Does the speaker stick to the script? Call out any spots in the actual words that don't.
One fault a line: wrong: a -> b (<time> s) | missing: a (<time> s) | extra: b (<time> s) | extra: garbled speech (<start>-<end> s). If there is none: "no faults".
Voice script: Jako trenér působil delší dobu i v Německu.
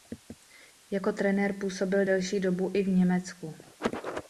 no faults